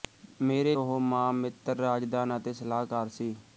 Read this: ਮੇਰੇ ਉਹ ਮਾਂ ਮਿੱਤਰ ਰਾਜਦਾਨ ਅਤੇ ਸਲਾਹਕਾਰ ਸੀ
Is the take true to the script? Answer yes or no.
yes